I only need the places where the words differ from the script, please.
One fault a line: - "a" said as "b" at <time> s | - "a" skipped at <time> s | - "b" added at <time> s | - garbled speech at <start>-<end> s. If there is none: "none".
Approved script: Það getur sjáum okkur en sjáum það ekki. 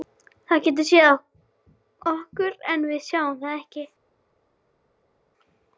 - "sjáum" said as "séð" at 0.9 s
- "við" added at 2.9 s